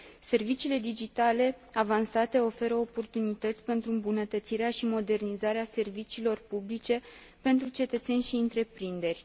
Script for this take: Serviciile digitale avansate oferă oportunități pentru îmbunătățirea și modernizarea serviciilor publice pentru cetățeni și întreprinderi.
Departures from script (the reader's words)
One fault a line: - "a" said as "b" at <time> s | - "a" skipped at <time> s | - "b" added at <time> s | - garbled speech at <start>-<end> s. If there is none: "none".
none